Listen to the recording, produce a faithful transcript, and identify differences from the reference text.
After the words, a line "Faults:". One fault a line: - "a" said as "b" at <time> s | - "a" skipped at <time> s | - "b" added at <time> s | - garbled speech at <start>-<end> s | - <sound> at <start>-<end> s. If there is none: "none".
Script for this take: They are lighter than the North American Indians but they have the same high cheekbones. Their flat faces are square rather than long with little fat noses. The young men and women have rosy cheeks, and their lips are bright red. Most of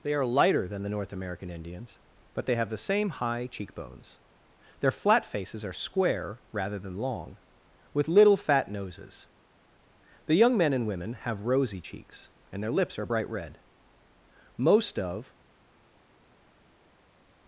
They are lighter than the North American Indians but they have the same high cheekbones. Their flat faces are square rather than long with little fat noses. The young men and women have rosy cheeks, and their lips are bright red. Most of
Faults:
none